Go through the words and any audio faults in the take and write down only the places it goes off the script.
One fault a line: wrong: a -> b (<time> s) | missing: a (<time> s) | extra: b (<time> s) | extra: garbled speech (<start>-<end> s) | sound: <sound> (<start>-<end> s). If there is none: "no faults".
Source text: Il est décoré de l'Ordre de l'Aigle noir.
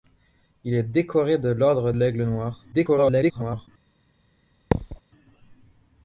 missing: de (1.9 s)
extra: garbled speech (2.7-3.7 s)
sound: thud (4.7-5.0 s)